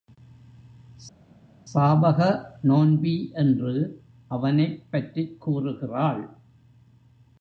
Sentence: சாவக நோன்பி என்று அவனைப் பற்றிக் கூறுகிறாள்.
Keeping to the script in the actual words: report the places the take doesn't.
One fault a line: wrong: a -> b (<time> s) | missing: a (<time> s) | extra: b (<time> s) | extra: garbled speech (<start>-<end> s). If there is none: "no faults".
no faults